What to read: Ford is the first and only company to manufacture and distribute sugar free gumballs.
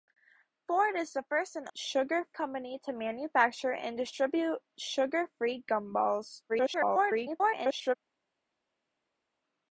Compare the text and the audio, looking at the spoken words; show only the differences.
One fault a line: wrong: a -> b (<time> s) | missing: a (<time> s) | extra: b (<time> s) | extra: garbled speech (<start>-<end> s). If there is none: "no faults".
wrong: only -> sugar (1.8 s)
extra: garbled speech (6.5-8.0 s)